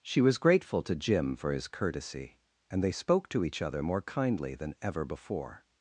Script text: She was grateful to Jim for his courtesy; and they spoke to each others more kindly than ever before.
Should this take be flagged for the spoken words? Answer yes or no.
yes